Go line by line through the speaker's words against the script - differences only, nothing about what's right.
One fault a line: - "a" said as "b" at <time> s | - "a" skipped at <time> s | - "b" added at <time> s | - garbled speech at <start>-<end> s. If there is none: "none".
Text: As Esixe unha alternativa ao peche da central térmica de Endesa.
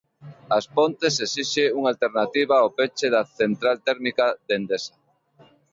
- "Pontes" added at 0.8 s